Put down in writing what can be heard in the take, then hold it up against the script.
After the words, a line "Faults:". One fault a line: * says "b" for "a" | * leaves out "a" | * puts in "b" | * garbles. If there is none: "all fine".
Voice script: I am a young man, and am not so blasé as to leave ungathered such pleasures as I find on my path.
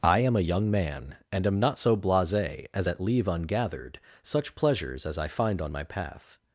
I am a young man, and am not so blasé as at leave ungathered such pleasures as I find on my path.
Faults:
* says "at" for "to"